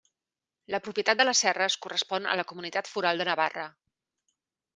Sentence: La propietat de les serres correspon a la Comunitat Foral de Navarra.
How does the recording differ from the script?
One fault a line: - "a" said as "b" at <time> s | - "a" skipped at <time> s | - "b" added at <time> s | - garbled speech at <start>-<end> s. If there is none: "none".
none